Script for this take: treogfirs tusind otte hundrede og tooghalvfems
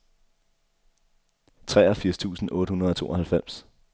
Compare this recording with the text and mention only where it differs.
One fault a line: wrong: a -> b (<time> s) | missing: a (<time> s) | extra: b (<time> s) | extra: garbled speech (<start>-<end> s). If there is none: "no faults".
no faults